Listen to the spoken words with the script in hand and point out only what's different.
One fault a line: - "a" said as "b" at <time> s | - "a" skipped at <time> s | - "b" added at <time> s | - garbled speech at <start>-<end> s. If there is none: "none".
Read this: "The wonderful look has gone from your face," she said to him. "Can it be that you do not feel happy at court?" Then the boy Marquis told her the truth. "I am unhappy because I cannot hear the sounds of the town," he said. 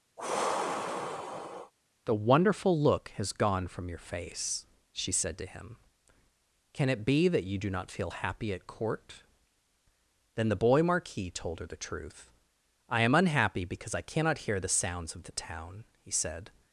none